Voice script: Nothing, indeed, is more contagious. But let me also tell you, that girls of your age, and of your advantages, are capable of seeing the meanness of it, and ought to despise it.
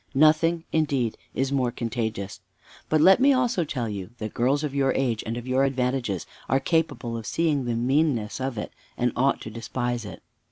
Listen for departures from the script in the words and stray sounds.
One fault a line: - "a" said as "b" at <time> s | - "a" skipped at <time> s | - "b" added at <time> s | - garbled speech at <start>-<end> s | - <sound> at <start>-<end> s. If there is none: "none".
none